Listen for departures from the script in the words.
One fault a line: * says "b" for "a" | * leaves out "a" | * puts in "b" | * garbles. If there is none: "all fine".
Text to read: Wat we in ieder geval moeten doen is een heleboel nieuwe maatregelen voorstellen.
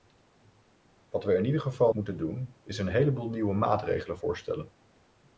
all fine